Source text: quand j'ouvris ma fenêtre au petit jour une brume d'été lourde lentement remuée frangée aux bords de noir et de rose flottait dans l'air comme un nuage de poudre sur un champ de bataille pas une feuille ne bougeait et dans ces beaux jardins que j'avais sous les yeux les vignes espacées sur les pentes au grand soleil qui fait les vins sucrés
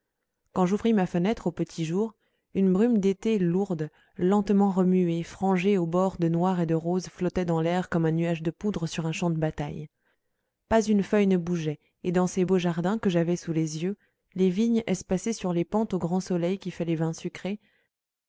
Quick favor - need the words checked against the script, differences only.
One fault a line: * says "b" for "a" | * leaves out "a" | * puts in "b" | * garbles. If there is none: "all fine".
all fine